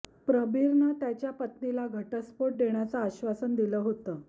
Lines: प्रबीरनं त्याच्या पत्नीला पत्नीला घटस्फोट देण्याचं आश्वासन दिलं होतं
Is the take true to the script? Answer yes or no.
no